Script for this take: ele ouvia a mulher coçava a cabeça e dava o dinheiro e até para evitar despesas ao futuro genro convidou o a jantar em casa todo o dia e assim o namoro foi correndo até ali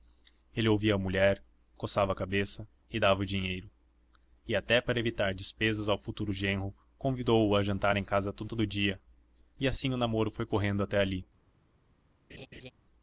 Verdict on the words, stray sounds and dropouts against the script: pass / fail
fail